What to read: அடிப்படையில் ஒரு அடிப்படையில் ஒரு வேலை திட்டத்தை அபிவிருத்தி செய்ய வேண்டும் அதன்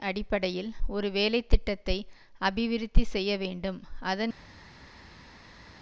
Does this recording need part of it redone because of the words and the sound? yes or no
yes